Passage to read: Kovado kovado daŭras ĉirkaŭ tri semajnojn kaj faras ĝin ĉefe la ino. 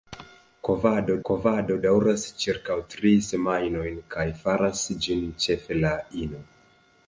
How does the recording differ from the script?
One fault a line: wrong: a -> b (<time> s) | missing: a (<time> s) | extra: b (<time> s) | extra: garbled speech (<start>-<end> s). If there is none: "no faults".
no faults